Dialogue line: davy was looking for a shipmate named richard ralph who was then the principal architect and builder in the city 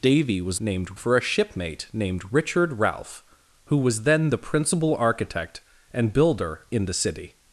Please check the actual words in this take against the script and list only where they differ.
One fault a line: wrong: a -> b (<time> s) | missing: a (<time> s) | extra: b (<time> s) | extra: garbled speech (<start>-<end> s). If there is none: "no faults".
wrong: looking -> named (0.6 s)